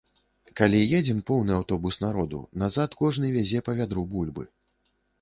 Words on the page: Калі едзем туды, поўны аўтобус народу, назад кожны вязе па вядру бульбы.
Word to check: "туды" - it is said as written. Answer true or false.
false